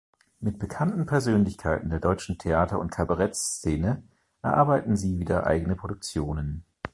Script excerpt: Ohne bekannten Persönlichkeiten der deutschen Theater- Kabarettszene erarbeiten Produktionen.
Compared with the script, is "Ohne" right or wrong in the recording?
wrong